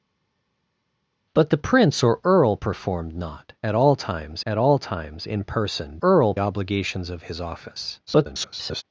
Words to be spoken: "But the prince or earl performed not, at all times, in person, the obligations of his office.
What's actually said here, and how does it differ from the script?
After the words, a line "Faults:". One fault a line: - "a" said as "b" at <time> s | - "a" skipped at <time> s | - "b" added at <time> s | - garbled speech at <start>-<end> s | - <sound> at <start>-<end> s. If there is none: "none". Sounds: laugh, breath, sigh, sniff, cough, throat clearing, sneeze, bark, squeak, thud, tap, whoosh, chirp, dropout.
"But the prince or earl performed not, at all times at all times, in person, earl obligations of his office. [garbled]
Faults:
- "at all times" added at 4.5 s
- "the" said as "earl" at 6.0 s
- garbled speech at 8.1-8.8 s